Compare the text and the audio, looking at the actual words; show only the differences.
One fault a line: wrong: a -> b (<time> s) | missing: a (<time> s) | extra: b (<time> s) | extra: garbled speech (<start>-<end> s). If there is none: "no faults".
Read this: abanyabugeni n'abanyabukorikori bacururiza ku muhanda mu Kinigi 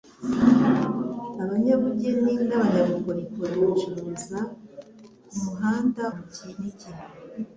no faults